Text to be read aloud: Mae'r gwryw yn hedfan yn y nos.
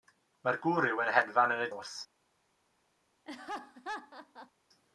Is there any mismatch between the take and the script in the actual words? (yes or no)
no